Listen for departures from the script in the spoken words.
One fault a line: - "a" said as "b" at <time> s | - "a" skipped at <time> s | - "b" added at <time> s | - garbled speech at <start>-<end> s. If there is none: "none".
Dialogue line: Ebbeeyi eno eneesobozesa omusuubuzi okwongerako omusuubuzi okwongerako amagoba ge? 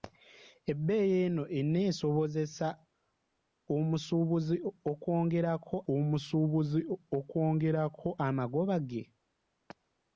none